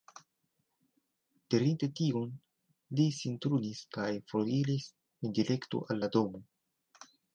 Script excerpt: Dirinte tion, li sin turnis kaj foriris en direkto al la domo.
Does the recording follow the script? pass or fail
pass